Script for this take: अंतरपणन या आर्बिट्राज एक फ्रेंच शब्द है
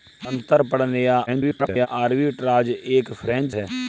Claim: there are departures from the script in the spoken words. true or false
true